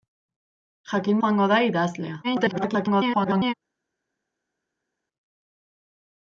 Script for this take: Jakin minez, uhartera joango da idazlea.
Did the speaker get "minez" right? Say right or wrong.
wrong